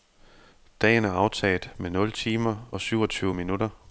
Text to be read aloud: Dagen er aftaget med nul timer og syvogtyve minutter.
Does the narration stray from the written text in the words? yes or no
no